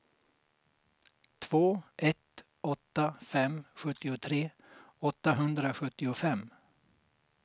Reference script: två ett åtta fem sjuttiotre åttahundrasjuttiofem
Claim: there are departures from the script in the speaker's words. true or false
false